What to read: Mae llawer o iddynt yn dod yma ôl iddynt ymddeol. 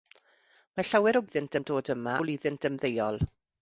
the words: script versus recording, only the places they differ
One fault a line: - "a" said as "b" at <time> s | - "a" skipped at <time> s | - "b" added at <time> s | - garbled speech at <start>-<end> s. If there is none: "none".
none